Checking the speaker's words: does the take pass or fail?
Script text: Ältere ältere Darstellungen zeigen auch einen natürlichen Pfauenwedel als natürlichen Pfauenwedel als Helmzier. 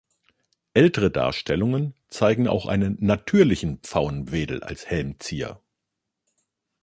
fail